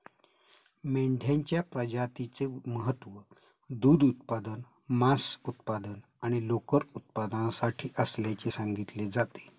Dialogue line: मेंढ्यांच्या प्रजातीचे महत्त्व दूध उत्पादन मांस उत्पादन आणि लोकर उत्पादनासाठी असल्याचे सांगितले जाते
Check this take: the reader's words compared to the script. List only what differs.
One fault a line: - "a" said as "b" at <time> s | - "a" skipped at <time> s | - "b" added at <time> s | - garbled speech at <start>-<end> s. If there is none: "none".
none